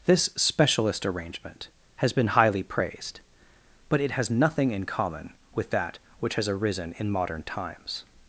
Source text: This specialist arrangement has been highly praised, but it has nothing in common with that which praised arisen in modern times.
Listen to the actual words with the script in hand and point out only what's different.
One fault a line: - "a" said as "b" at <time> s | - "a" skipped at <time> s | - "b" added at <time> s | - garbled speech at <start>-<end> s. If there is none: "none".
- "praised" said as "has" at 6.4 s